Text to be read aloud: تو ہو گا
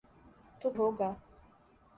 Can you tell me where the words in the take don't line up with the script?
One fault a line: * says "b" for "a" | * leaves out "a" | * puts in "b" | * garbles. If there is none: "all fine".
all fine